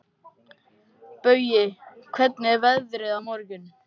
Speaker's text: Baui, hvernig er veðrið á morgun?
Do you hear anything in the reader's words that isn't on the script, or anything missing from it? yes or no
no